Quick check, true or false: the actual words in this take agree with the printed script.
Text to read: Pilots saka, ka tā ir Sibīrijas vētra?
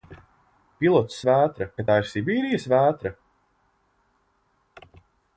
false